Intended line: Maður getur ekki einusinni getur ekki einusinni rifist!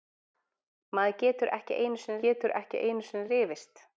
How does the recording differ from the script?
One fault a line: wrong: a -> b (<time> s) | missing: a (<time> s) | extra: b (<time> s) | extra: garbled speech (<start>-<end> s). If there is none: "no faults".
no faults